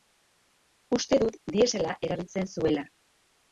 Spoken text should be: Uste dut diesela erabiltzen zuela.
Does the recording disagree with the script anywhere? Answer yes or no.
no